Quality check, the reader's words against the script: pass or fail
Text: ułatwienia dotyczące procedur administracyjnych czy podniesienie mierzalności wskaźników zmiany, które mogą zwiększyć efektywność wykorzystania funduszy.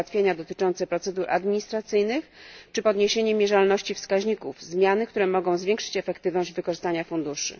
pass